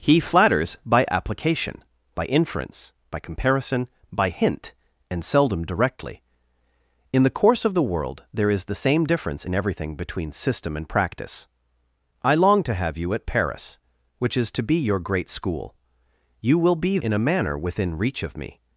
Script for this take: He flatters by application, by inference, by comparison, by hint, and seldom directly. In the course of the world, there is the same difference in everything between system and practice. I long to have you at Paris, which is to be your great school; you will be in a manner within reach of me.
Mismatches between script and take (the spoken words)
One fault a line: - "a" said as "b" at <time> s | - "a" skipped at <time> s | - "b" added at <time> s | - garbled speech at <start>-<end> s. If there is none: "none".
none